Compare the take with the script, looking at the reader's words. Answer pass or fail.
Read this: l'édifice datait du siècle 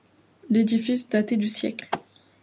pass